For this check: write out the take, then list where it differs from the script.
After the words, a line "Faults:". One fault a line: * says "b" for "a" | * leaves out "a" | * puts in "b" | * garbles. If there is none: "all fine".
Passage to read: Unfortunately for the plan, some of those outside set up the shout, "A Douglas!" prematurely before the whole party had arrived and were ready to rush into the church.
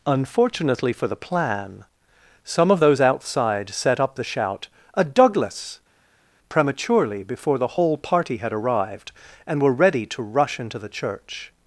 Unfortunately for the plan, some of those outside set up the shout, "A Douglas!" prematurely before the whole party had arrived and were ready to rush into the church.
Faults:
all fine